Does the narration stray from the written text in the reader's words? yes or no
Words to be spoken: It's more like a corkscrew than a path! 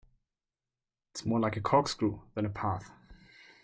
no